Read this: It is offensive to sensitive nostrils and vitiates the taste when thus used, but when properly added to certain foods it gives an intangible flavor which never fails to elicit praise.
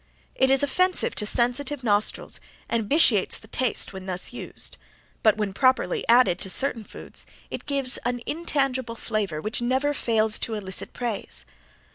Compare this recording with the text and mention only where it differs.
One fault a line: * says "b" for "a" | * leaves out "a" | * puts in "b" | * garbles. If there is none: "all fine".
all fine